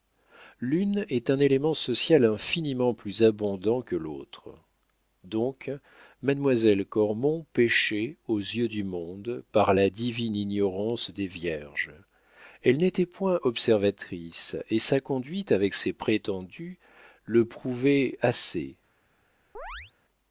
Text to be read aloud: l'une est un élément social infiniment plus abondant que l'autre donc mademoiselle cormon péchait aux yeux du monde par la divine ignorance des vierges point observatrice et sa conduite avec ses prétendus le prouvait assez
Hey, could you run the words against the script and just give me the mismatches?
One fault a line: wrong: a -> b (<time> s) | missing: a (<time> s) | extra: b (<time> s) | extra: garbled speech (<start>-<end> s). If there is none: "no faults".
extra: elle n'était (12.6 s)